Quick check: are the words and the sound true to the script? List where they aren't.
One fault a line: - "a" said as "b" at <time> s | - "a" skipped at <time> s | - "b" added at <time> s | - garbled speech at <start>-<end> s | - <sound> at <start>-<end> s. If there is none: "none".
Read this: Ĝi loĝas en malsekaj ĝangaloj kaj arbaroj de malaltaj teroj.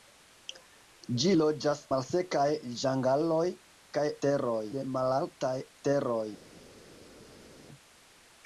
- "en" skipped at 1.8 s
- "arbaroj" said as "teroj" at 4.3 s